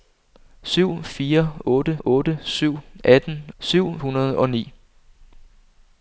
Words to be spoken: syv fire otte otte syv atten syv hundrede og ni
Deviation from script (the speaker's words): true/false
false